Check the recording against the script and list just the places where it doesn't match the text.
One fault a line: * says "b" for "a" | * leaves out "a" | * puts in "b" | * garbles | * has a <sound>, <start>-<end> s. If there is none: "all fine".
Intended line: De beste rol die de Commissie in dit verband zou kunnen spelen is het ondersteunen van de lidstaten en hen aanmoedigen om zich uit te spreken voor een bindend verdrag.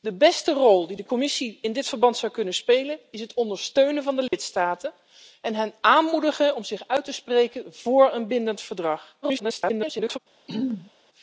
* has a dropout, 4.3-4.3 s
* garbles
* has a throat clearing, 10.5-10.9 s